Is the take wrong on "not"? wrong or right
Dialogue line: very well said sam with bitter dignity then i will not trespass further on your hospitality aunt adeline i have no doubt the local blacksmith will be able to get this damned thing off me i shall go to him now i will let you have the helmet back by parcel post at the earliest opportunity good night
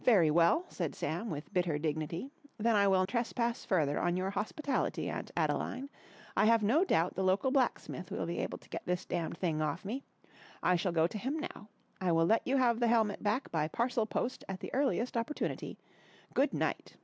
wrong